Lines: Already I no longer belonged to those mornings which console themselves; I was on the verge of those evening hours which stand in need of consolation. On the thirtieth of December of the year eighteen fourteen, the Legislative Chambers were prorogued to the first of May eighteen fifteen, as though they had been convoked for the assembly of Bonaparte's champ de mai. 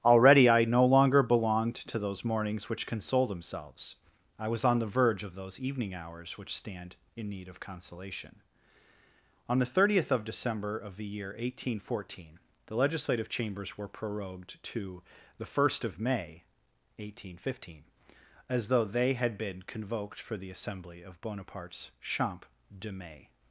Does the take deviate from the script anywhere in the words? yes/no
no